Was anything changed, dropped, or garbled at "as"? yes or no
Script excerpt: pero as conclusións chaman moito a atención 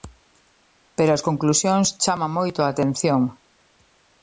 no